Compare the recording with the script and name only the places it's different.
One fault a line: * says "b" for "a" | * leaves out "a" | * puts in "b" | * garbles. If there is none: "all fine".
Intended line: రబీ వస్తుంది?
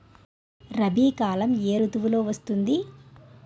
* puts in "కాలం ఏ ఋతువులో"